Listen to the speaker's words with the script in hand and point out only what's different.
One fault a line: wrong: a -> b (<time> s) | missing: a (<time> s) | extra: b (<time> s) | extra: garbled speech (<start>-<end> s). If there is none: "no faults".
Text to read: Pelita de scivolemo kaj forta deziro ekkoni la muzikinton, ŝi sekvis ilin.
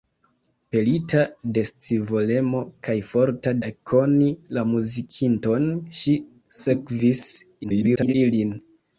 missing: deziro (3.5 s)
extra: garbled speech (7.6-8.1 s)